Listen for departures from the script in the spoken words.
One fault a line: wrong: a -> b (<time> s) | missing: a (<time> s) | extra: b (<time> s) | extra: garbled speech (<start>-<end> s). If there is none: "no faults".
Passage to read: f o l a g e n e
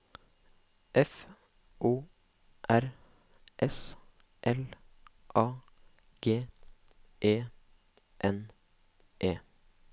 extra: r s (2.7 s)